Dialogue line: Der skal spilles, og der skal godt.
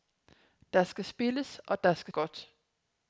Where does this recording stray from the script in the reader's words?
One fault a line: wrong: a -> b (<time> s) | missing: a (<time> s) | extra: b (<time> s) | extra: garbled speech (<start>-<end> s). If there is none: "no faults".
no faults